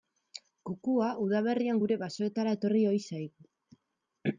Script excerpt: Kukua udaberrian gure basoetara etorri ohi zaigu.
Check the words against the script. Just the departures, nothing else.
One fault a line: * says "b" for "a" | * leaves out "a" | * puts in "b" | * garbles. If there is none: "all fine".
all fine